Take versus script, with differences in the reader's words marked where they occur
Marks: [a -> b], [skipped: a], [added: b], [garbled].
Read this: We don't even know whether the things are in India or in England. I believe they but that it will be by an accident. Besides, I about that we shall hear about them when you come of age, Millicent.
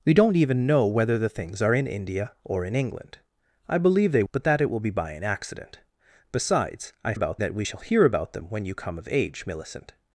We don't even know whether the things are in India or in England. I believe they but that it will be by an accident. Besides, I about that we shall hear about them when you come of age, Millicent.